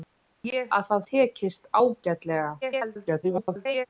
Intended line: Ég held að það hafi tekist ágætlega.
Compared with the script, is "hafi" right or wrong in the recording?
wrong